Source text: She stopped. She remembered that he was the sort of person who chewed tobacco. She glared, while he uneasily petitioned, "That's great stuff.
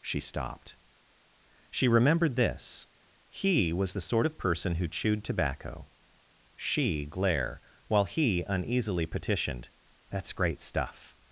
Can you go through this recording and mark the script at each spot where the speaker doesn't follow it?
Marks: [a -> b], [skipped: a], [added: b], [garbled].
She stopped. She remembered [that -> this] he was the sort of person who chewed tobacco. She [glared, -> glare] while he uneasily petitioned, "That's great stuff.